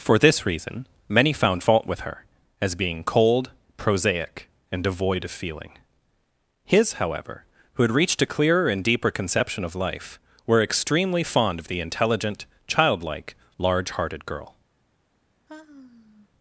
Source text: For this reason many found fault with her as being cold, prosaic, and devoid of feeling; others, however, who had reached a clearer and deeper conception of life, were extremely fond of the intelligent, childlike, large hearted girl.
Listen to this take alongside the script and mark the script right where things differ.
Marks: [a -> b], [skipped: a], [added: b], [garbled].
For this reason many found fault with her as being cold, prosaic, and devoid of feeling; [others, -> his] however, who had reached a clearer and deeper conception of life, were extremely fond of the intelligent, childlike, large hearted girl.